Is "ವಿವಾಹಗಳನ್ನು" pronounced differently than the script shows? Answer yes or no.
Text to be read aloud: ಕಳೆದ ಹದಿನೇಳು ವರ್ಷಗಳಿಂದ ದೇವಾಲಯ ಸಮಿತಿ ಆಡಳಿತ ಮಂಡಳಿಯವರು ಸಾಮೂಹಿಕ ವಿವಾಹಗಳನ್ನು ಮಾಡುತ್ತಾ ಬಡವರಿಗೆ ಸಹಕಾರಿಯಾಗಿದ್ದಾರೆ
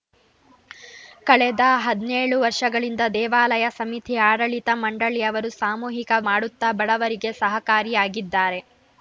yes